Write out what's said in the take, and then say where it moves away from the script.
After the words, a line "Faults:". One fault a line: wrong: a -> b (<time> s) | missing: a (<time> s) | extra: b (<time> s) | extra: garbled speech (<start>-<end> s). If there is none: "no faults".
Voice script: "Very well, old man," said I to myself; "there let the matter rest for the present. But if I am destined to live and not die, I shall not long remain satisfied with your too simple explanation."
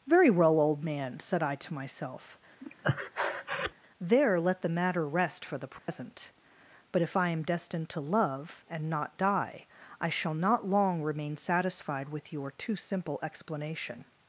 "Very well, old man," said I to myself; "there let the matter rest for the present. But if I am destined to love and not die, I shall not long remain satisfied with your too simple explanation."
Faults:
wrong: live -> love (8.0 s)